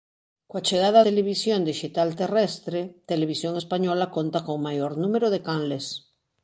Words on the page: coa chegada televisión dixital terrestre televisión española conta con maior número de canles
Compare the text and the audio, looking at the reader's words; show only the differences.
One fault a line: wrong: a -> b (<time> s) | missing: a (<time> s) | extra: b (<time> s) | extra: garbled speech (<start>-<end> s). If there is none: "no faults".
no faults